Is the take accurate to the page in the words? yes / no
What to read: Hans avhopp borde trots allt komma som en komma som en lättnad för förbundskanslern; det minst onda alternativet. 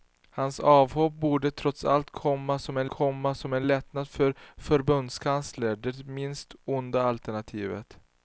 yes